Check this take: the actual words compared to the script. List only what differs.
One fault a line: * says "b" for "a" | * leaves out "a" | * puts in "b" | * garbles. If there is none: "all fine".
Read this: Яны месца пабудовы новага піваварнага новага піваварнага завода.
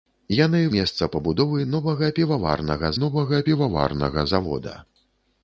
all fine